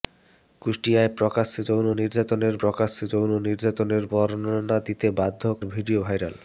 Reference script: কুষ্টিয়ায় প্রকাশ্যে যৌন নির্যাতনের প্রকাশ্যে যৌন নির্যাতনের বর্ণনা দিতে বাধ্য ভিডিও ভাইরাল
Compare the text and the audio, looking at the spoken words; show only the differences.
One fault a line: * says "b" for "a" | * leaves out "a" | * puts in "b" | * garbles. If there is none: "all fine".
all fine